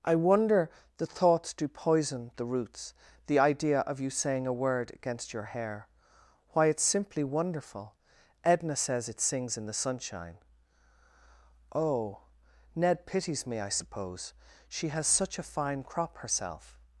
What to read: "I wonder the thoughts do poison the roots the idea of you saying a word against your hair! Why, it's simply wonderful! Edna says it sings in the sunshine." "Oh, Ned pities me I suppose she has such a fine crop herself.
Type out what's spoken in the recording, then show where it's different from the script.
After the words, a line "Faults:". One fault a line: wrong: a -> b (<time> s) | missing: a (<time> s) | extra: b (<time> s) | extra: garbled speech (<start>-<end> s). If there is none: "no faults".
"I wonder the thoughts do poison the roots the idea of you saying a word against your hair! Why, it's simply wonderful! Edna says it sings in the sunshine." "Oh, Ned pities me I suppose she has such a fine crop herself.
Faults:
no faults